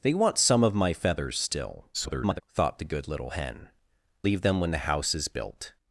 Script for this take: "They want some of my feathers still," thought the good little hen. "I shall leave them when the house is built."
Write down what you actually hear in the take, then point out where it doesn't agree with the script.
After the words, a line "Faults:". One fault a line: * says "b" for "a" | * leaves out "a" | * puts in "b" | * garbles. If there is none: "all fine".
"They want some of my feathers still," [garbled] thought the good little hen. "leave them when the house is built."
Faults:
* garbles
* leaves out "I shall"